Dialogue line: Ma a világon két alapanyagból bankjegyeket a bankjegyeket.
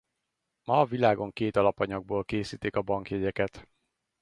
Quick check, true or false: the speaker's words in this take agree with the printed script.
false